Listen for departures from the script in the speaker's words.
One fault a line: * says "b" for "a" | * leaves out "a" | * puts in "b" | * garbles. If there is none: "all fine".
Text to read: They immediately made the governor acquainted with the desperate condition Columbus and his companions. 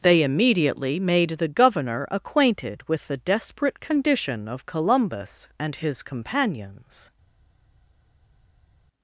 * puts in "of"